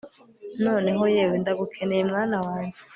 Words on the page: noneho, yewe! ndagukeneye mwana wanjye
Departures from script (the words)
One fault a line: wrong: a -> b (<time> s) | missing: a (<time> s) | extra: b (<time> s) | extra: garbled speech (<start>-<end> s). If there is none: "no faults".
no faults